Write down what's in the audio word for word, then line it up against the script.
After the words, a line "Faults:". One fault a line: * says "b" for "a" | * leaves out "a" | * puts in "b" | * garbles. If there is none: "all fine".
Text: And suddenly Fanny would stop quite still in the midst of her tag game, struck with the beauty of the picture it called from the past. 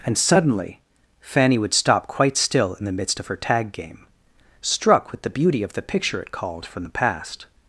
And suddenly Fanny would stop quite still in the midst of her tag game, struck with the beauty of the picture it called from the past.
Faults:
all fine